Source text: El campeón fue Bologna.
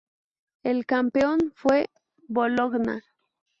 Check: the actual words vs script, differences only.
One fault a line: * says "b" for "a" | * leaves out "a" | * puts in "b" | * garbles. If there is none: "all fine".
all fine